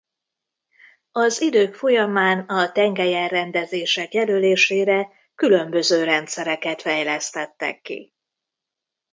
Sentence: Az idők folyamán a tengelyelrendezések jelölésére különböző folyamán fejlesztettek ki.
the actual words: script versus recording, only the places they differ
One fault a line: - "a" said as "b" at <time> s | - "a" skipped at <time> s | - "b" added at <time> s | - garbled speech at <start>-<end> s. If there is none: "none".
- "folyamán" said as "rendszereket" at 6.0 s